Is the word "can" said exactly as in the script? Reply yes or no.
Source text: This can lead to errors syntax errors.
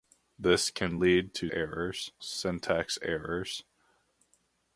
yes